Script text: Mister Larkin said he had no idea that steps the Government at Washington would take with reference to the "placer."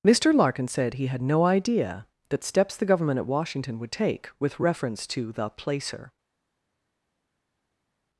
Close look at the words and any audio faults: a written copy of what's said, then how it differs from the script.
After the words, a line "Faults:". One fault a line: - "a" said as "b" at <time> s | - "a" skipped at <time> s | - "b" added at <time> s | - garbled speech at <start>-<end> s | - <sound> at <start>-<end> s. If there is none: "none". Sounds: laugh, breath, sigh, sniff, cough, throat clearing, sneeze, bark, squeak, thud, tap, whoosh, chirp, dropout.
Mister Larkin said he had no idea that steps the Government at Washington would take with reference to the "placer."
Faults:
none